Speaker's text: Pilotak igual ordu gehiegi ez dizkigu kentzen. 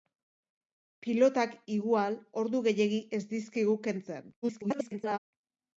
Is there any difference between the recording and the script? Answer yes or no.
yes